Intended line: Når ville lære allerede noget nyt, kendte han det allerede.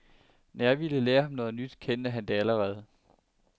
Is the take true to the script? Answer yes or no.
no